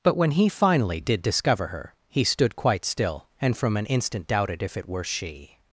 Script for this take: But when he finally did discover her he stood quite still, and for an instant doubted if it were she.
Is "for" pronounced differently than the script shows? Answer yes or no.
yes